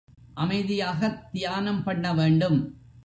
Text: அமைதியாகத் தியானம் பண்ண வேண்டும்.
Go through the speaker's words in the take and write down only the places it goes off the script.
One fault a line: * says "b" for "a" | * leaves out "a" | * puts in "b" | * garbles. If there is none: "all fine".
all fine